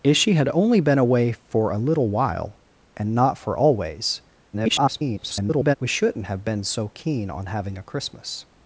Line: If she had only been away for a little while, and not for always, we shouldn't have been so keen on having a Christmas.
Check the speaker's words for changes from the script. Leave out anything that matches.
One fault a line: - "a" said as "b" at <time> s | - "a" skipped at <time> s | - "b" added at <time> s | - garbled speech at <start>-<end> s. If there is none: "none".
- garbled speech at 4.5-5.8 s